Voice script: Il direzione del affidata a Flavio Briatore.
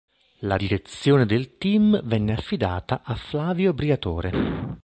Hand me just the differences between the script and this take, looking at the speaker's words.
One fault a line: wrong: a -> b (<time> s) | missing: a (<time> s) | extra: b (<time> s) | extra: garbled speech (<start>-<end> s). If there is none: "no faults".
wrong: Il -> La (0.4 s)
extra: team venne (1.6 s)